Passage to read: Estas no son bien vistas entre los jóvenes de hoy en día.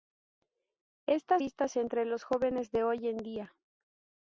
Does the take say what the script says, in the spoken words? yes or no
no